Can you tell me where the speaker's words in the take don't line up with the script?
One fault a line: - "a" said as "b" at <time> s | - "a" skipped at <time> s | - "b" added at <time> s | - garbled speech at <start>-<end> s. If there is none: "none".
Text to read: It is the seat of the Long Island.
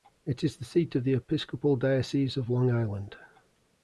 - "Episcopal Diocese of" added at 1.1 s